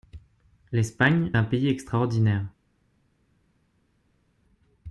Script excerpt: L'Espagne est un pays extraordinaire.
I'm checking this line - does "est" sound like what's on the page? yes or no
no